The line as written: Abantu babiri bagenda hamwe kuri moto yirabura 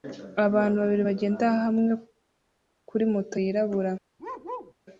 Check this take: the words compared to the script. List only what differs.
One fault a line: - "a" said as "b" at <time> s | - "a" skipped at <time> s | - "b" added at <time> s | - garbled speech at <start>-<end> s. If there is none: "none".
none